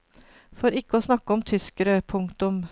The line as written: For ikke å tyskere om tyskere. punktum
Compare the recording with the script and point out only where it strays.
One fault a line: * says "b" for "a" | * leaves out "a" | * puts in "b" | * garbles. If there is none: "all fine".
* says "snakke" for "tyskere"